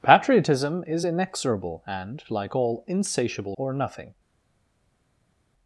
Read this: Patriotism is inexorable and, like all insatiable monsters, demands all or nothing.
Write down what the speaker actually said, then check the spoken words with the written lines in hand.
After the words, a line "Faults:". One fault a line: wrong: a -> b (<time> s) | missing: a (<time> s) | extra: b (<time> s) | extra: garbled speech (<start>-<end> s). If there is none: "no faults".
Patriotism is inexorable and, like all insatiable or nothing.
Faults:
missing: monsters demands all (3.6 s)